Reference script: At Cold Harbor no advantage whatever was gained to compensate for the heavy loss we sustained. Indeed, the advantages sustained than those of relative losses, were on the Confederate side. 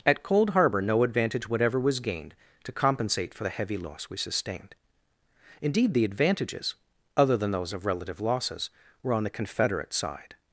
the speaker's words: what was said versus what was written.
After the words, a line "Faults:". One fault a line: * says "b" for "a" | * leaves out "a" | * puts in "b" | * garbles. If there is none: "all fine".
At Cold Harbor no advantage whatever was gained to compensate for the heavy loss we sustained. Indeed, the advantages other than those of relative losses, were on the Confederate side.
Faults:
* says "other" for "sustained"